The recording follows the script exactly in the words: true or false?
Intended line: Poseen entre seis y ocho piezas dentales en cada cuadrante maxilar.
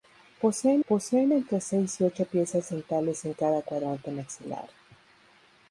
false